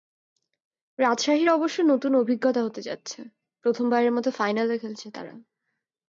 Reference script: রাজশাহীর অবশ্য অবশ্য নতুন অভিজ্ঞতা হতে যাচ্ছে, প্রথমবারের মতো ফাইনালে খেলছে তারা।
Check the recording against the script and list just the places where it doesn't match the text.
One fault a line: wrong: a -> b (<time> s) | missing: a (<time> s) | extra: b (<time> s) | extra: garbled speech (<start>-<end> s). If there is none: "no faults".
missing: অবশ্য (1.8 s)